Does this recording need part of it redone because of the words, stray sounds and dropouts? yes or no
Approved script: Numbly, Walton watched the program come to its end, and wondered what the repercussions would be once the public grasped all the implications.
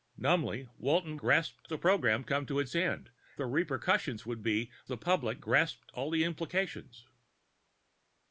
yes